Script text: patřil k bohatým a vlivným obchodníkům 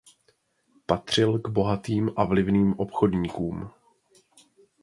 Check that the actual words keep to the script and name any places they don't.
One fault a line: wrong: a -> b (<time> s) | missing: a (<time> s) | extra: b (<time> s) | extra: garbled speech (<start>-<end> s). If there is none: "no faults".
no faults